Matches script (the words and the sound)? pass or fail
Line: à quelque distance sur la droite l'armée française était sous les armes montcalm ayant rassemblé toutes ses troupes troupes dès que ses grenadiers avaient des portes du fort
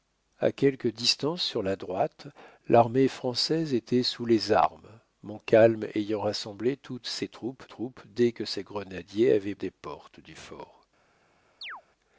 fail